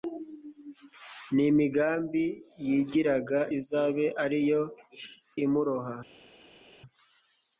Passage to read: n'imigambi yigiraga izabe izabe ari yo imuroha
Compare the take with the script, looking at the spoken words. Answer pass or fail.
fail